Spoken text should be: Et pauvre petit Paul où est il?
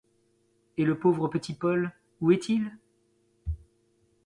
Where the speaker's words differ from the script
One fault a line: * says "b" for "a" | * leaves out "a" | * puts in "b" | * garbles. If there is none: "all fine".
* puts in "le"